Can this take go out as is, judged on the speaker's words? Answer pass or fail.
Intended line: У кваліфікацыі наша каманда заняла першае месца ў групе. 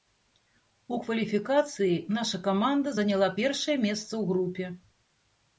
pass